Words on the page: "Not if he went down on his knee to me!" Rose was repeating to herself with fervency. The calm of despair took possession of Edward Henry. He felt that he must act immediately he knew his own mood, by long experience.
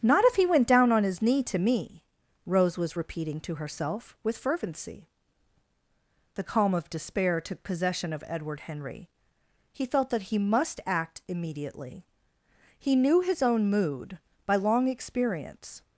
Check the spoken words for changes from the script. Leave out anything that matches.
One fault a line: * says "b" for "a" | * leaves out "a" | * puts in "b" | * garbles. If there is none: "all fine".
all fine